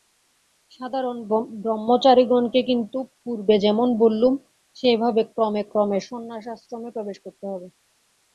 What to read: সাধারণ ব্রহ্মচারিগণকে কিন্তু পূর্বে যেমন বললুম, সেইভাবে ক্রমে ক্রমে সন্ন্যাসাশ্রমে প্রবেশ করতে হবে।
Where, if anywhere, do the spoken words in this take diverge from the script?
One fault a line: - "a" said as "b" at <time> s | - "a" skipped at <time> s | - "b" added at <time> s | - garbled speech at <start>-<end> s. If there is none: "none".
none